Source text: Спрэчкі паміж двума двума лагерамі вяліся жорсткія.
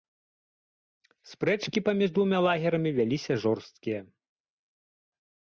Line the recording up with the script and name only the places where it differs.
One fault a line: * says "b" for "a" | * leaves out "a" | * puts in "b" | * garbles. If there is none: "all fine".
* leaves out "двума"